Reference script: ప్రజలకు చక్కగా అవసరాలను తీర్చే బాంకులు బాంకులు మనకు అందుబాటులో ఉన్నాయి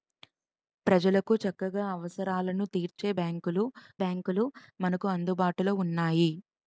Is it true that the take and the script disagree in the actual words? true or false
false